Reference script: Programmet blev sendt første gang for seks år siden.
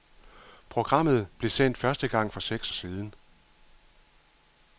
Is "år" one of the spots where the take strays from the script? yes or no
yes